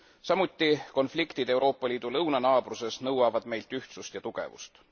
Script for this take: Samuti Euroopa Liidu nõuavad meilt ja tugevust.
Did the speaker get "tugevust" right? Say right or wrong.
right